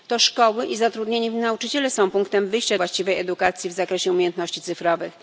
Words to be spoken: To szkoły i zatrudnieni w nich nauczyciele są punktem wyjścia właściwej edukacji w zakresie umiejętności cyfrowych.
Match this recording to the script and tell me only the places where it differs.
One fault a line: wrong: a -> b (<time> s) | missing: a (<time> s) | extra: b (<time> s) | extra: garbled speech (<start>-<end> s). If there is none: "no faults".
no faults